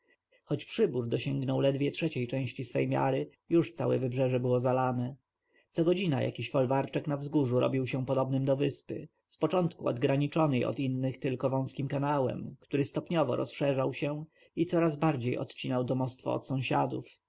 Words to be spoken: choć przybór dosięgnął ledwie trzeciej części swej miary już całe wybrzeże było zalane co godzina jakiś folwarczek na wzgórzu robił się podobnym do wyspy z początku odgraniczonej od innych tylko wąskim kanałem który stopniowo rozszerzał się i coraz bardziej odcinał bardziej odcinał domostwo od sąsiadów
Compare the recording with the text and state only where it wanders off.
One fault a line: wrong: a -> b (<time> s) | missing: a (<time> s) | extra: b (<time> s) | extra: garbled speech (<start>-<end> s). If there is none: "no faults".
missing: bardziej odcinał (15.8 s)